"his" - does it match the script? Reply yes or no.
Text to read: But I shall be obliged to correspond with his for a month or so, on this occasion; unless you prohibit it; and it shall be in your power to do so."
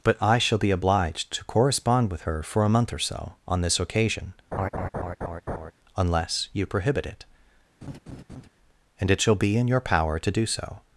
no